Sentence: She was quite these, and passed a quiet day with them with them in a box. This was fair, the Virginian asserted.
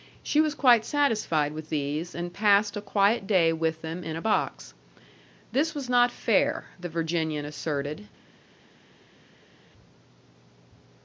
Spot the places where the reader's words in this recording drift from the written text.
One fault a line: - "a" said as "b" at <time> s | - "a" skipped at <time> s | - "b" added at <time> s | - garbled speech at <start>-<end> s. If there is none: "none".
- "satisfied with" added at 0.8 s
- "with them" skipped at 4.0 s
- "not" added at 5.9 s